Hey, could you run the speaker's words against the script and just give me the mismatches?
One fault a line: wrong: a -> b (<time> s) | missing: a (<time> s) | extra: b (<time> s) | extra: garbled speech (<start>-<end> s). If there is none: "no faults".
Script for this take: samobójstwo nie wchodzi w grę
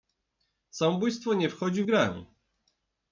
no faults